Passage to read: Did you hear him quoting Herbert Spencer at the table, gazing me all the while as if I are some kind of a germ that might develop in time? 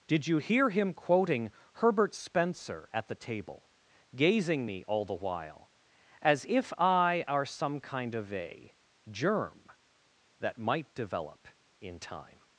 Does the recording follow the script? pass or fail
pass